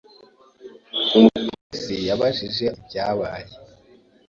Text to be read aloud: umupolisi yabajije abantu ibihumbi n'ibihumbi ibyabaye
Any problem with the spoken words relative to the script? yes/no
yes